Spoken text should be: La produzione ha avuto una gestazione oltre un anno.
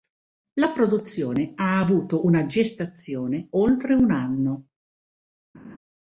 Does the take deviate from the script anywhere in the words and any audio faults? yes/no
yes